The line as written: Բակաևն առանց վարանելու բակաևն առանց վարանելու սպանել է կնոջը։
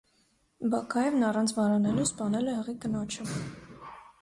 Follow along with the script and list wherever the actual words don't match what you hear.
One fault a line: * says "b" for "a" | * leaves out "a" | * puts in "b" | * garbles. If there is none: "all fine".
* leaves out "բակաևն առանց վարանելու"
* puts in "հղի"